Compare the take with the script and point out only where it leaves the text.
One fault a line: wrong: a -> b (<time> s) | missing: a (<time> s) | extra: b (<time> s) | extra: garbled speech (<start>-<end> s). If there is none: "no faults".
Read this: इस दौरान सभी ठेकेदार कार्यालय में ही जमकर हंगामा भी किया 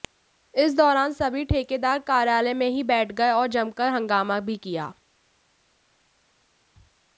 extra: बैठ गए और (2.8 s)